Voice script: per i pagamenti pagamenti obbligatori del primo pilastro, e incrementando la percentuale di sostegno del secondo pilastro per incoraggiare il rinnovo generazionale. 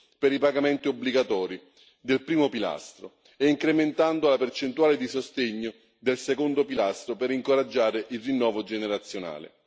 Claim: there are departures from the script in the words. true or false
true